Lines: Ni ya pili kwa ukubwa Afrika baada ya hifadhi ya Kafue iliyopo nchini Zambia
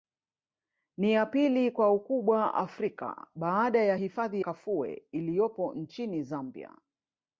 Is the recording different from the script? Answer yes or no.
yes